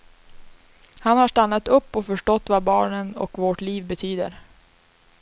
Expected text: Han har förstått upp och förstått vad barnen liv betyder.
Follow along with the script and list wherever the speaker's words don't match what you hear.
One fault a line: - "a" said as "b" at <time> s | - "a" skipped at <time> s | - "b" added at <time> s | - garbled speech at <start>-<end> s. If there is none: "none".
- "förstått" said as "stannat" at 1.2 s
- "och vårt" added at 3.2 s